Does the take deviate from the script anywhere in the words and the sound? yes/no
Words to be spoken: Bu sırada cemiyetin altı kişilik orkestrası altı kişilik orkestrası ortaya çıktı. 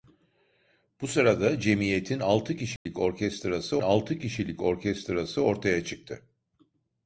yes